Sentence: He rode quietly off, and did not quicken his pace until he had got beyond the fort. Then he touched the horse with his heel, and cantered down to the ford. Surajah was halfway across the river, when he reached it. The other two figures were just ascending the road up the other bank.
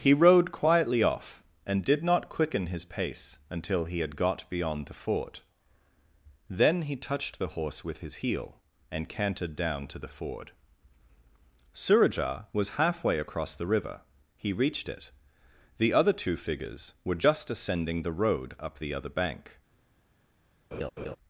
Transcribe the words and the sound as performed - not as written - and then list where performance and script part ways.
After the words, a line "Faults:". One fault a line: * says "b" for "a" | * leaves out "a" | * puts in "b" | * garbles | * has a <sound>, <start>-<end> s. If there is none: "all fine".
He rode quietly off, and did not quicken his pace until he had got beyond the fort. Then he touched the horse with his heel, and cantered down to the ford. Surajah was halfway across the river, he reached it. The other two figures were just ascending the road up the other bank.
Faults:
* leaves out "when"
* has a laugh, 20.7-21.2 s